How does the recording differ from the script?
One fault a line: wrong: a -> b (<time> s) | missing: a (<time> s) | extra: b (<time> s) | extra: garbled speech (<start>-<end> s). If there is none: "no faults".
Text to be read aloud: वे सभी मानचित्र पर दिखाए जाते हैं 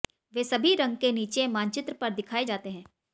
extra: रंग के नीचे (0.8 s)